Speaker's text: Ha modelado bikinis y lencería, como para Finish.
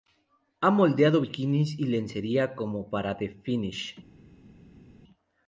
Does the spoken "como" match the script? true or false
true